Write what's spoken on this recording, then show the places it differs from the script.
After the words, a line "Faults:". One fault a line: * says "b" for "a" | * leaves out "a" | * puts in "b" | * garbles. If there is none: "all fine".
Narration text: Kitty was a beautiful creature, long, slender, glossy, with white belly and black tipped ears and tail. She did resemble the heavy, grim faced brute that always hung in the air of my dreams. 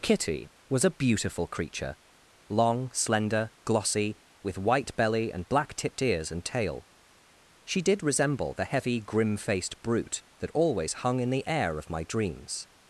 Kitty was a beautiful creature, long, slender, glossy, with white belly and black tipped ears and tail. She did resemble the heavy, grim faced brute that always hung in the air of my dreams.
Faults:
all fine